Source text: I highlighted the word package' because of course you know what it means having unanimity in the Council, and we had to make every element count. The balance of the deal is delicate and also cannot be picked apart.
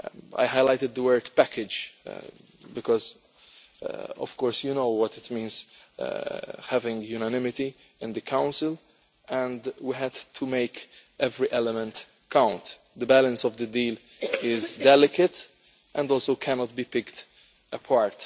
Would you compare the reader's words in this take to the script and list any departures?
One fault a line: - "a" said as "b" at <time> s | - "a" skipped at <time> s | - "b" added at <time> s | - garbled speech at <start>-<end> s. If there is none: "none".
none